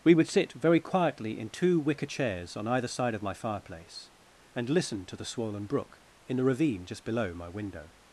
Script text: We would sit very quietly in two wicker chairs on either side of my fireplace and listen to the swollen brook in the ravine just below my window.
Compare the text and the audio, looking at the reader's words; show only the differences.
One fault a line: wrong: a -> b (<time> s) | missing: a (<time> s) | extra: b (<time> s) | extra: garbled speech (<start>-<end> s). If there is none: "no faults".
no faults